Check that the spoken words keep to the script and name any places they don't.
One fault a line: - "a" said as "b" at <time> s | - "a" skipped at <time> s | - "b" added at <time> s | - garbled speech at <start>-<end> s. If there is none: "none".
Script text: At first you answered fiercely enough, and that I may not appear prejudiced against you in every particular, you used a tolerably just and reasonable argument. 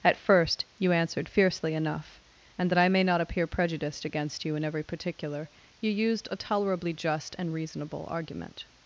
none